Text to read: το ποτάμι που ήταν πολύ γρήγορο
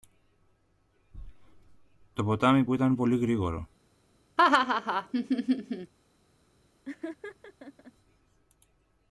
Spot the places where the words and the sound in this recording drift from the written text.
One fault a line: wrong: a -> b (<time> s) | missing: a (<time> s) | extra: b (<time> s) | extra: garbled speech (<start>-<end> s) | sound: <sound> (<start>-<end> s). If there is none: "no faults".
sound: laugh (4.4-5.9 s)
sound: laugh (6.8-7.9 s)